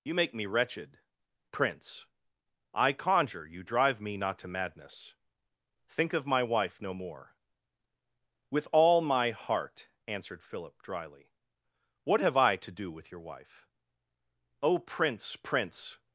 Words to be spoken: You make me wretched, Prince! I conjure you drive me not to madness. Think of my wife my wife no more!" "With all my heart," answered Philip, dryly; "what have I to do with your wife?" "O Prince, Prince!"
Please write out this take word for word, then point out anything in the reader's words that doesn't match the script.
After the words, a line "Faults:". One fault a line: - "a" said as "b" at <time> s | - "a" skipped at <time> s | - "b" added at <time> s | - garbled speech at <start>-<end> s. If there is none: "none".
You make me wretched, Prince! I conjure you drive me not to madness. Think of my wife no more!" "With all my heart," answered Philip, dryly; "what have I to do with your wife?" "O Prince, Prince!"
Faults:
- "my wife" skipped at 6.8 s